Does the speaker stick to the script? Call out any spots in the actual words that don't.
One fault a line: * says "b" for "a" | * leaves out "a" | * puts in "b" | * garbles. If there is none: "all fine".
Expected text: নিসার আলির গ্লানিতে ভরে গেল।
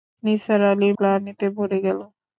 all fine